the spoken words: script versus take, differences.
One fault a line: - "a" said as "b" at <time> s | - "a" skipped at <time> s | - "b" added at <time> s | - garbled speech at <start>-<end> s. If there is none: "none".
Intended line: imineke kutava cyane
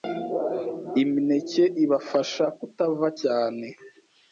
- "ibafasha" added at 1.8 s